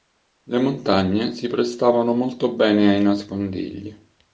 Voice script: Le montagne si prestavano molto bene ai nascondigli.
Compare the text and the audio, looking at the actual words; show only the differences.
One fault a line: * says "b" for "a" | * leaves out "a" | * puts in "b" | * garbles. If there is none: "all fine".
all fine